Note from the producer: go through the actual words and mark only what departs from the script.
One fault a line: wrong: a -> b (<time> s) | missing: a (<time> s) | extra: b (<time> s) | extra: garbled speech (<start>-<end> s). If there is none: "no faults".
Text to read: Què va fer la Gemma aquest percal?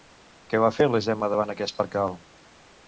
extra: davant (1.3 s)